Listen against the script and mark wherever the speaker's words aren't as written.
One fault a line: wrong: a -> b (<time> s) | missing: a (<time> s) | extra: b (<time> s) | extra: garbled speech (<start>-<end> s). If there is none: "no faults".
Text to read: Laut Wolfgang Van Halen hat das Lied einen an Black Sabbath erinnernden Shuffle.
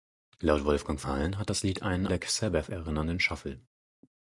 missing: Van (1.1 s)
missing: an (2.1 s)